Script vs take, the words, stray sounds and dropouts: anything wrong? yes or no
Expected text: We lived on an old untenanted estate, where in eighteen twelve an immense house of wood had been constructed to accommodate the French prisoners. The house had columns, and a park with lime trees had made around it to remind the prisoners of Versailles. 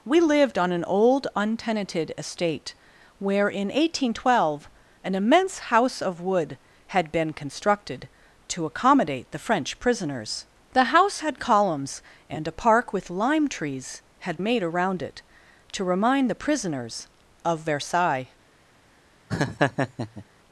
yes